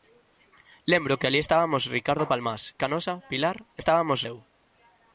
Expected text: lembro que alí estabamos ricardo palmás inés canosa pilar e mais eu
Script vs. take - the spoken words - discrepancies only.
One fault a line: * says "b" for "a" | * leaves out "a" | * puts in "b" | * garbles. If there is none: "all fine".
* leaves out "inés"
* says "estabamos" for "mais"